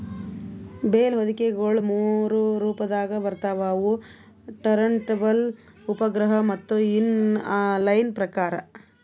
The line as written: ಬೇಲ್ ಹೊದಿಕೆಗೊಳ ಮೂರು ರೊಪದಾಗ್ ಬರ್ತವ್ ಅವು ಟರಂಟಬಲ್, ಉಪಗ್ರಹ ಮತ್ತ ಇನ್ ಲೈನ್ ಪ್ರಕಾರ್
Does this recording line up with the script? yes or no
yes